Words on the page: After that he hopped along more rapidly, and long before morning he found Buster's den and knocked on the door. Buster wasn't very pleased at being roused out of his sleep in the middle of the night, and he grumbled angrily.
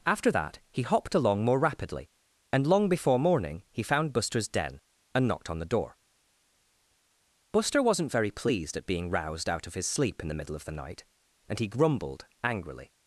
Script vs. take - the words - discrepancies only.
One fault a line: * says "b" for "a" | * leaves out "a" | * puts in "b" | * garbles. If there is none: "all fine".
all fine